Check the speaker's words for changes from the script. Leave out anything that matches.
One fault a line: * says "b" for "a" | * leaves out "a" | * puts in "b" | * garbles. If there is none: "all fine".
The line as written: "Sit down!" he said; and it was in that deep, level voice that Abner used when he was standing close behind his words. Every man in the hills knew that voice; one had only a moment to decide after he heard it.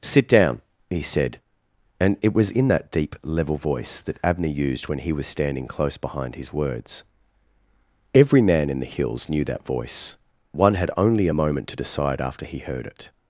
all fine